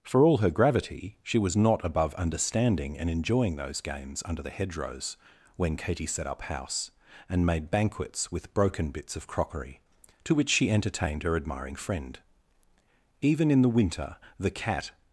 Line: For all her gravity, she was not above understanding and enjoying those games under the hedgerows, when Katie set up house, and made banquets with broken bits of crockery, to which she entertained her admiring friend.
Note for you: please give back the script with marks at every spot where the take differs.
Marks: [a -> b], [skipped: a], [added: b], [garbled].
For all her gravity, she was not above understanding and enjoying those games under the hedgerows, when Katie set up house, and made banquets with broken bits of crockery, to which she entertained her admiring friend. [added: Even in the winter the cat]